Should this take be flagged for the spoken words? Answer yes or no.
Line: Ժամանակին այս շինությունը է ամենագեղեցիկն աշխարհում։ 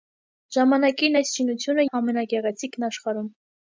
no